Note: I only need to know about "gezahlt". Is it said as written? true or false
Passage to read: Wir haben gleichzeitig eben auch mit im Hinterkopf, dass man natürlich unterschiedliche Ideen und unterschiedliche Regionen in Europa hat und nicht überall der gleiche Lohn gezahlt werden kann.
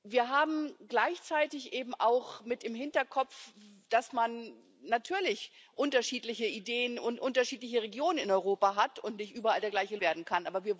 false